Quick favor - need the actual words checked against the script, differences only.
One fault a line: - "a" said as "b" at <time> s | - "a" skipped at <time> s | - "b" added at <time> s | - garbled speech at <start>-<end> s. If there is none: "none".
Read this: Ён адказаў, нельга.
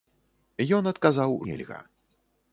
none